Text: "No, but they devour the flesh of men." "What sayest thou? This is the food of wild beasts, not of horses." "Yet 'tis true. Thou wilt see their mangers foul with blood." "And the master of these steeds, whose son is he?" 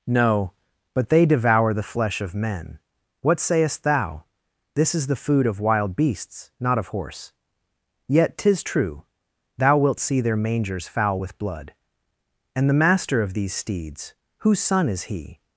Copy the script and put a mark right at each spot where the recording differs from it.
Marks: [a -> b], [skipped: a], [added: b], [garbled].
"No, but they devour the flesh of men." "What sayest thou? This is the food of wild beasts, not of [horses." -> horse] "Yet 'tis true. Thou wilt see their mangers foul with blood." "And the master of these steeds, whose son is he?"